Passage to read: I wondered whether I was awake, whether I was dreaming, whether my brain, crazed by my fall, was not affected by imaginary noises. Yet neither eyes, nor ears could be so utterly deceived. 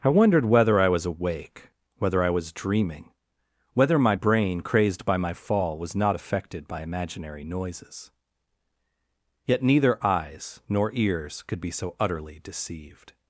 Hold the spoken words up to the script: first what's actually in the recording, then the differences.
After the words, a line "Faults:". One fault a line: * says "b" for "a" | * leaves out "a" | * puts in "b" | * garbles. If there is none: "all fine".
I wondered whether I was awake, whether I was dreaming, whether my brain, crazed by my fall, was not affected by imaginary noises. Yet neither eyes, nor ears could be so utterly deceived.
Faults:
all fine